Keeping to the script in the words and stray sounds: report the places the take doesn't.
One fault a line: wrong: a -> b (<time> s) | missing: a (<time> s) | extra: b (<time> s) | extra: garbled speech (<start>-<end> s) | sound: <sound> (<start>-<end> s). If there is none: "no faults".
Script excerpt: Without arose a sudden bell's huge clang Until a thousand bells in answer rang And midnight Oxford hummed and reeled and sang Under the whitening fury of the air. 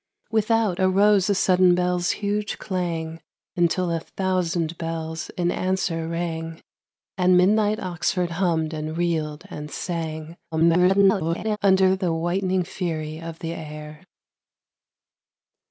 extra: garbled speech (10.5-11.6 s)